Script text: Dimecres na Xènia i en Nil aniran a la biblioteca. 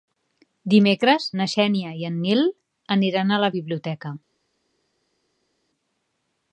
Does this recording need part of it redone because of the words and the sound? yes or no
no